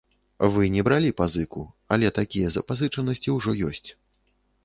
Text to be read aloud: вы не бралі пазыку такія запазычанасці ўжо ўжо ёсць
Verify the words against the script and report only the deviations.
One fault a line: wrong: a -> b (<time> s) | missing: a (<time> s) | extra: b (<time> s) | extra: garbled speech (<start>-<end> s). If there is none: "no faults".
extra: але (1.9 s)
missing: ўжо (3.6 s)